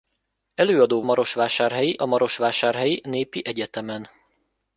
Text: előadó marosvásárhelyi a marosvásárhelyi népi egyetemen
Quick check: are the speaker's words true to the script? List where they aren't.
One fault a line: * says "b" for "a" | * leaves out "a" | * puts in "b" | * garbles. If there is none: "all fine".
all fine